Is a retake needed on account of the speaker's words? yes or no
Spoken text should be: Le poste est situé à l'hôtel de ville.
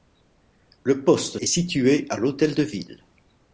no